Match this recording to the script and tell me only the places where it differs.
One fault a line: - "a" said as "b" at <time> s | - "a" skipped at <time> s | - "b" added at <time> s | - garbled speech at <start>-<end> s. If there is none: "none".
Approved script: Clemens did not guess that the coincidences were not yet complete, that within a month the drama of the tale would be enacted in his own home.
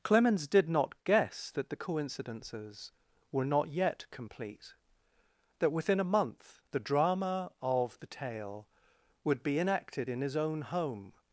none